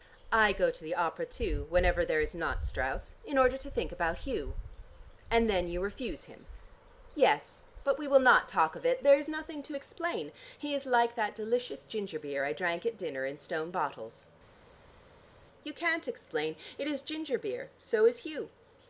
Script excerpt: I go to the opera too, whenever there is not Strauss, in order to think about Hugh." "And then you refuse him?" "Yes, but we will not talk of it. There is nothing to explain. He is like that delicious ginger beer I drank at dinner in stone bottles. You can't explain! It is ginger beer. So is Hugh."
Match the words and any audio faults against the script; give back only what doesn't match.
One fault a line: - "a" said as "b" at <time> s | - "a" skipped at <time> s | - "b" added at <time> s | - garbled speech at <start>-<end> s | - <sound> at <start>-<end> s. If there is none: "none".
none